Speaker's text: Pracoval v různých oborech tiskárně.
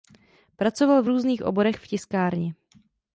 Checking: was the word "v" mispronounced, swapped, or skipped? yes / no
no